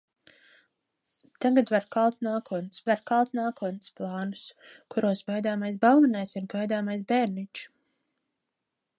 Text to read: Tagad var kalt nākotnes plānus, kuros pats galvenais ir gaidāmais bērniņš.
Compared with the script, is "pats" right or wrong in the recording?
wrong